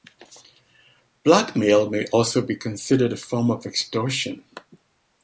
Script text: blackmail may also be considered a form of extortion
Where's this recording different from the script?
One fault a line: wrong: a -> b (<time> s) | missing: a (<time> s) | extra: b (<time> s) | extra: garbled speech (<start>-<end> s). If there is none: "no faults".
no faults